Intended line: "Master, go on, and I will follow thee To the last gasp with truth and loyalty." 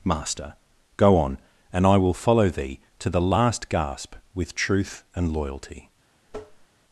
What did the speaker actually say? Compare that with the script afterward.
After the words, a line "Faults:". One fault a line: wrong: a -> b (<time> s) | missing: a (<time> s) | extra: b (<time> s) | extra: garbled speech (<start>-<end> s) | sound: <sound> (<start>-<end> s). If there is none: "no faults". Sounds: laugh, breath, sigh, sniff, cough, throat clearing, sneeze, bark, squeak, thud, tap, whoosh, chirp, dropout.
"Master, go on, and I will follow thee To the last gasp with truth and loyalty."
Faults:
sound: tap (6.3-6.7 s)